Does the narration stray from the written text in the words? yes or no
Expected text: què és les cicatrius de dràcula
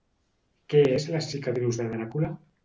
no